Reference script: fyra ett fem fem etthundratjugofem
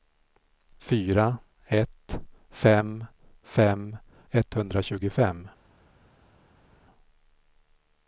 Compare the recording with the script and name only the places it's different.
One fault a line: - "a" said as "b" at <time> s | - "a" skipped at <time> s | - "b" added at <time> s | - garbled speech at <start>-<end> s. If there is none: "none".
none